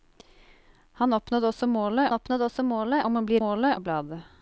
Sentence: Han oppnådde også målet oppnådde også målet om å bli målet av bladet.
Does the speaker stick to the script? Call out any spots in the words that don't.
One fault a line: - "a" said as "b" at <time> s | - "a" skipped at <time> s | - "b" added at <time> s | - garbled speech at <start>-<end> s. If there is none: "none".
none